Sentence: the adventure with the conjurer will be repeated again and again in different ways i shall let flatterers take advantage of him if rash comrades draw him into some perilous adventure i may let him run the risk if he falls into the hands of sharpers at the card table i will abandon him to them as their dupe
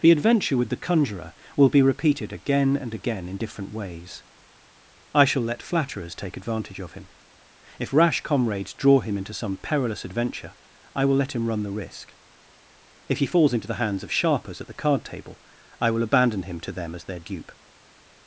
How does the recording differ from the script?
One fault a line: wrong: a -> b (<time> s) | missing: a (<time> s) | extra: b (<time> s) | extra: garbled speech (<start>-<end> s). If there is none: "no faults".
wrong: may -> will (11.0 s)